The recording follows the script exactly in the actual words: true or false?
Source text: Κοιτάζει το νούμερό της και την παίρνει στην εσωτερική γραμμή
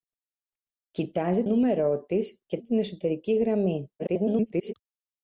false